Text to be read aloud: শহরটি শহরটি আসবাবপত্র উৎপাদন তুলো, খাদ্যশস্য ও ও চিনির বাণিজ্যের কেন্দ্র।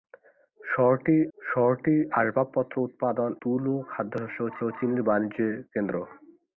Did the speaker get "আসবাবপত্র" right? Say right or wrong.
right